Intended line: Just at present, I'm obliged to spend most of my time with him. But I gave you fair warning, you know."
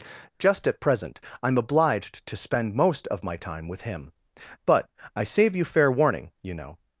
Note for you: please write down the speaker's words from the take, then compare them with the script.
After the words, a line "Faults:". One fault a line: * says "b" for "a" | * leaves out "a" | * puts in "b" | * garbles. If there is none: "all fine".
Just at present, I'm obliged to spend most of my time with him. But I save you fair warning, you know."
Faults:
* says "save" for "gave"